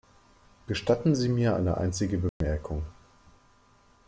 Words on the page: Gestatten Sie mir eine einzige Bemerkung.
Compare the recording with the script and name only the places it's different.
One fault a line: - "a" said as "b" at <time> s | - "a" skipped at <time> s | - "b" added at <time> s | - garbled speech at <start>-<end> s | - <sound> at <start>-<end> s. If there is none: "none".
- dropout at 2.3-2.4 s